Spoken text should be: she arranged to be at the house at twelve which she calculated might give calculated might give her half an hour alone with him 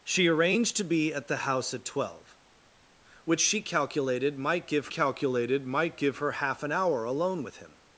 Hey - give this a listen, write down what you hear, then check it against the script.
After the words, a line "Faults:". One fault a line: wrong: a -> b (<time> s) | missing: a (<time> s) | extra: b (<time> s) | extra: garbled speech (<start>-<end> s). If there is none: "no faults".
she arranged to be at the house at twelve which she calculated might give calculated might give her half an hour alone with him
Faults:
no faults